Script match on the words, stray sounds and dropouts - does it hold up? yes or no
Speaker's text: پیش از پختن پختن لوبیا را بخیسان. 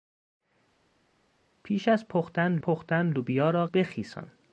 yes